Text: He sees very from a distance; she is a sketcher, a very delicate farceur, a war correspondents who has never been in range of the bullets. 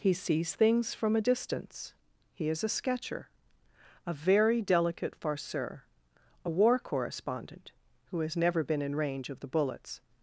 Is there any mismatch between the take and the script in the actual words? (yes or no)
yes